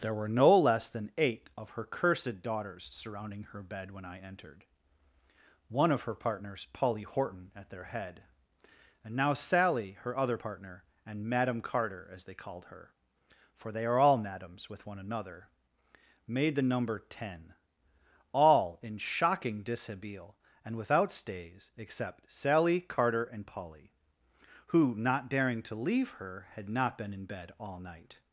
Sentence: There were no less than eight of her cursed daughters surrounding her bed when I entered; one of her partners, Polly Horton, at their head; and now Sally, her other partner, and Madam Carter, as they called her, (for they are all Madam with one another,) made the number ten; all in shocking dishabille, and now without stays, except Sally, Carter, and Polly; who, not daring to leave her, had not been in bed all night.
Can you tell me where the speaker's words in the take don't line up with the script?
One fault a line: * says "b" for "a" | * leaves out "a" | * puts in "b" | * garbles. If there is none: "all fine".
* says "Madams" for "Madam"
* leaves out "now"